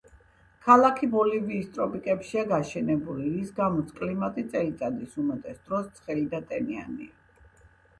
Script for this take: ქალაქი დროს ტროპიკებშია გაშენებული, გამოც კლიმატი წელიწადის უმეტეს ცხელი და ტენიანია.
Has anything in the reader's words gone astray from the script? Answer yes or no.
yes